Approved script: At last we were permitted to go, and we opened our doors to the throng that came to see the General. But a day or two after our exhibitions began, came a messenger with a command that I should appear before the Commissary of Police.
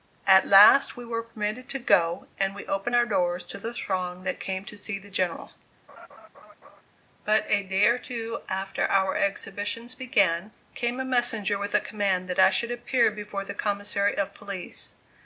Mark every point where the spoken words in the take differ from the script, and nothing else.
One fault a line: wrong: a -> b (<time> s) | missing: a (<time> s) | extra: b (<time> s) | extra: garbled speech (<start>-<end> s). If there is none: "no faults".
no faults